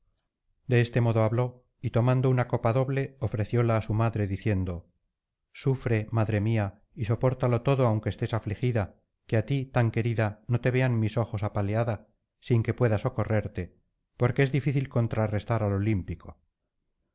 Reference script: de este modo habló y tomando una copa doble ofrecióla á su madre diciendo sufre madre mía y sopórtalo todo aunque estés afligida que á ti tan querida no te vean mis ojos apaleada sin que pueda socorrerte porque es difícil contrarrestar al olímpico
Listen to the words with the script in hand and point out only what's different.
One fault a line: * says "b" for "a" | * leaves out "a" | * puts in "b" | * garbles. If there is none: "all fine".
all fine